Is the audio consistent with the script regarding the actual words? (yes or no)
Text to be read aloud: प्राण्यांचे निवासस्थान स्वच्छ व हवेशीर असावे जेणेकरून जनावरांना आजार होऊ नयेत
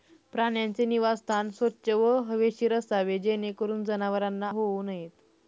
no